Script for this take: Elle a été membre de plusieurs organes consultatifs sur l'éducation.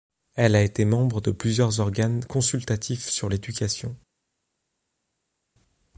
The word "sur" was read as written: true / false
true